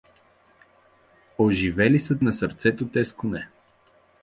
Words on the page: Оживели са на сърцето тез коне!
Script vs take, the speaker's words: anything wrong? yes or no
no